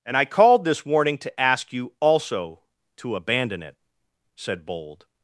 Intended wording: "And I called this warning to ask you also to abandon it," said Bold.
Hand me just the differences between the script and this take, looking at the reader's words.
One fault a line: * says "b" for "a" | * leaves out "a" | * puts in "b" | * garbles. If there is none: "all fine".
all fine